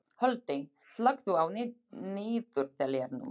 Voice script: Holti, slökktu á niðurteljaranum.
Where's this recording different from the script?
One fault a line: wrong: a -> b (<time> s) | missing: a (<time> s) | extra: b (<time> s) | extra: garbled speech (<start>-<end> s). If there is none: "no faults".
no faults